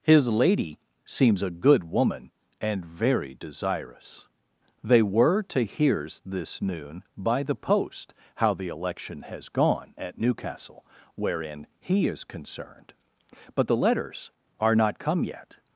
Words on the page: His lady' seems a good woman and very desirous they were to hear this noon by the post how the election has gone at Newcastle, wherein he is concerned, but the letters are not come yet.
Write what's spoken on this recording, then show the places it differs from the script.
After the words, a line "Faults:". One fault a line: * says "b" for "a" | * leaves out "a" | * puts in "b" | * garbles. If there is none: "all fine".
His lady' seems a good woman and very desirous they were to hears this noon by the post how the election has gone at Newcastle, wherein he is concerned, but the letters are not come yet.
Faults:
* says "hears" for "hear"